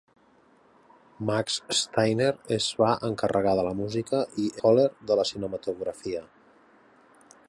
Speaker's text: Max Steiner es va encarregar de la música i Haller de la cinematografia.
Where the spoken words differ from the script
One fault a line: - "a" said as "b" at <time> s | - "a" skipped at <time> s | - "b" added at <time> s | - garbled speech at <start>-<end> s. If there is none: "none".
none